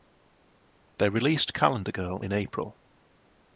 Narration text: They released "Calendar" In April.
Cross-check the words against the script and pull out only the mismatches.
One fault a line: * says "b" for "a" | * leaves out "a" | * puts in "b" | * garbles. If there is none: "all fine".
* puts in "Girl"